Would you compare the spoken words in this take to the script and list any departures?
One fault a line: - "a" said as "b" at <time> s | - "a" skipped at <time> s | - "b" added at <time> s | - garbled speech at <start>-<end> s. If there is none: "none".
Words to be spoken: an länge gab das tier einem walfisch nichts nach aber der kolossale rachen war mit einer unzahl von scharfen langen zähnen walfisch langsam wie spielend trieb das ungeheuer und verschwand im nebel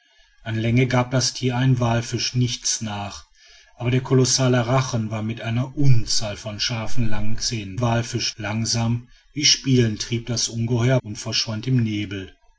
none